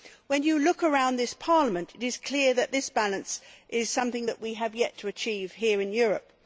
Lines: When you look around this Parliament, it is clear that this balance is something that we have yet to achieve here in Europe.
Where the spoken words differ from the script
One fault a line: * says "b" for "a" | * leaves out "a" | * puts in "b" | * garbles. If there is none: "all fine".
all fine